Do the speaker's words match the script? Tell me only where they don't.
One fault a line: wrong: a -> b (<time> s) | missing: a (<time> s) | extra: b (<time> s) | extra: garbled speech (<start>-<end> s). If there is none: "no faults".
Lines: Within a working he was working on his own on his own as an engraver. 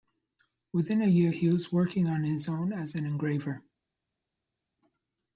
wrong: working -> year (1.1 s)
missing: on his own (2.7 s)